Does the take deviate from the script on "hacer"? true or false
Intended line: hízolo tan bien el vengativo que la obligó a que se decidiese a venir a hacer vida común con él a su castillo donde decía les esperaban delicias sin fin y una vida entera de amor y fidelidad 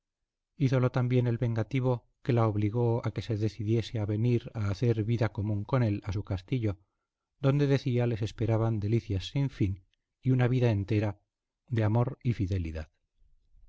false